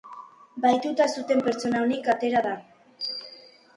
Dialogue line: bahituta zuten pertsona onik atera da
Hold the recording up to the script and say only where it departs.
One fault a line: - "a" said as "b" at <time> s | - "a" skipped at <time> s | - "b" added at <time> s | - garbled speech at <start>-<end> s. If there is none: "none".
none